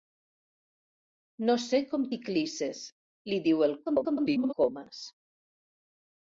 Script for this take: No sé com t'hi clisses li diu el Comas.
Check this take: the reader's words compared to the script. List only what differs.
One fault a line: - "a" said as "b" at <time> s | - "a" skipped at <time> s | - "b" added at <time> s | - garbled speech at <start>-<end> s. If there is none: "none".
- garbled speech at 3.8-4.5 s